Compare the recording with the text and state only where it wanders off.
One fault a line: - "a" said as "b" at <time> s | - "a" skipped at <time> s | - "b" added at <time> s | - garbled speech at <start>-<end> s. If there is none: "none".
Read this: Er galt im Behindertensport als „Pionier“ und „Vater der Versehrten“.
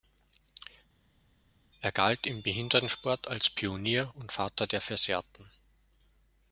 none